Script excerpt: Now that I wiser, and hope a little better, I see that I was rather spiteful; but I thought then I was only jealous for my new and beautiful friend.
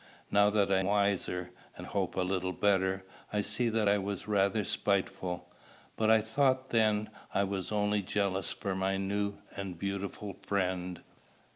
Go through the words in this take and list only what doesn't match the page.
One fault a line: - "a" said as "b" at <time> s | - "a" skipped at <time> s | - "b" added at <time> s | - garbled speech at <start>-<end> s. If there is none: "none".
none